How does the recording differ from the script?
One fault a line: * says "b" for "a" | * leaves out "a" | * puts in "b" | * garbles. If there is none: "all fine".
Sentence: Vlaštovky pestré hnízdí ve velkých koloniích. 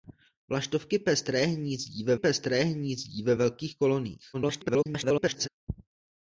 * puts in "pestré hnízdí ve"
* garbles